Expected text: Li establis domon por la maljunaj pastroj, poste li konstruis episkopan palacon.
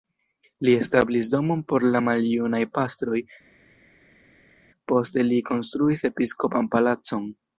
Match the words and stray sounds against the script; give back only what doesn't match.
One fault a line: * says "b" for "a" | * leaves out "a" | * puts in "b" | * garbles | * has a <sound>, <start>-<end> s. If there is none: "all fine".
all fine